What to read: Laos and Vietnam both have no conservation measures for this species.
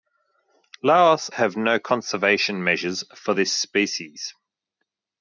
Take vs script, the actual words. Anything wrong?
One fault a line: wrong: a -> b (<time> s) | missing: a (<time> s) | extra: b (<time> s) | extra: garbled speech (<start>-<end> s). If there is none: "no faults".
missing: and Vietnam both (1.3 s)